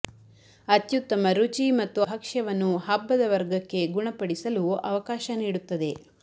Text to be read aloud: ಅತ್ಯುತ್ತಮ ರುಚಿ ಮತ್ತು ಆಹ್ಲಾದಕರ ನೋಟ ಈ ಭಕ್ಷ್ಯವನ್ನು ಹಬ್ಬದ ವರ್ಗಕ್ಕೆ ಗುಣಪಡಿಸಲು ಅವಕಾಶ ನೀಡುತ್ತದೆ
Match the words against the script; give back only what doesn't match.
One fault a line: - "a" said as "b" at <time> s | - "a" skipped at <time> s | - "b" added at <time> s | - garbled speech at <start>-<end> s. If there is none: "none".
- "ಆಹ್ಲಾದಕರ ನೋಟ ಈ" skipped at 2.0 s